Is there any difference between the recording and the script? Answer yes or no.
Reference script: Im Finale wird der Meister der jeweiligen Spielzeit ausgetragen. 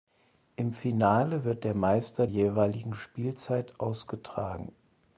yes